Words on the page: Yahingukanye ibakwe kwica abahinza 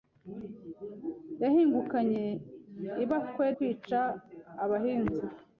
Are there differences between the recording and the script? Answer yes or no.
no